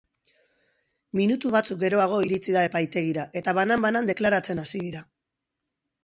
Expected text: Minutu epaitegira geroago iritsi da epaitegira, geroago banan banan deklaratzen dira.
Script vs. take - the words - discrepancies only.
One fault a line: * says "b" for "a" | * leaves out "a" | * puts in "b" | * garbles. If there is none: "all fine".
* says "batzuk" for "epaitegira"
* says "eta" for "geroago"
* puts in "hasi"